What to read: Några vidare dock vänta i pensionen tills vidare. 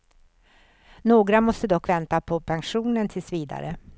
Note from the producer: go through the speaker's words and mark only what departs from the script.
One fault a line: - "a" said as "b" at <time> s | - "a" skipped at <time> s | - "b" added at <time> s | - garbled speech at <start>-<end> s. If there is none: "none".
- "vidare" said as "måste" at 1.4 s
- "i" said as "på" at 2.2 s